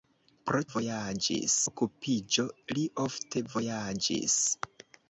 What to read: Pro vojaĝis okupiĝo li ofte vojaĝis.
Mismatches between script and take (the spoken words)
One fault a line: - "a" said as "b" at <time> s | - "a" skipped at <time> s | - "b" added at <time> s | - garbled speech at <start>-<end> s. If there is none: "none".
none